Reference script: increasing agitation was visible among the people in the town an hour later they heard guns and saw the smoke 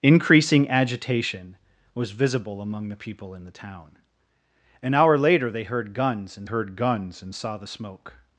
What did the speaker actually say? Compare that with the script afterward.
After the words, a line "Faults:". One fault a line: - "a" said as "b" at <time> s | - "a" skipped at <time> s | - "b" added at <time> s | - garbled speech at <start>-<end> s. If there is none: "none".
increasing agitation was visible among the people in the town an hour later they heard guns and heard guns and saw the smoke
Faults:
- "heard guns and" added at 6.4 s